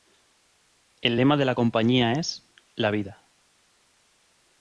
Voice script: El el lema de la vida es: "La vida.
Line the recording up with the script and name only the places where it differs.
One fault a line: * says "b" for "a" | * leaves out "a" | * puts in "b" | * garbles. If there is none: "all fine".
* leaves out "el"
* says "compañía" for "vida"